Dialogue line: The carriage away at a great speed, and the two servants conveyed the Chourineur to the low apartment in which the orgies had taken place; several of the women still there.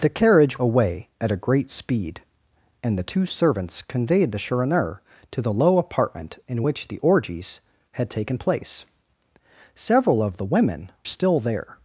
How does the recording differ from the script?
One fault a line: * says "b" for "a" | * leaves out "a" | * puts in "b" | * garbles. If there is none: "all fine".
all fine